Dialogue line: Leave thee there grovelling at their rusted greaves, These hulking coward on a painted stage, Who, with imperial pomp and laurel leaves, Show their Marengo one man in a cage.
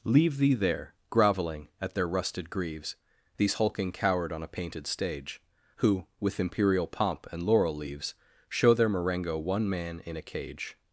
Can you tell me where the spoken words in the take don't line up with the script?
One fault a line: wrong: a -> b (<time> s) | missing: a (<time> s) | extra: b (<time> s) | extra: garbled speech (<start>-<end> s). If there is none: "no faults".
no faults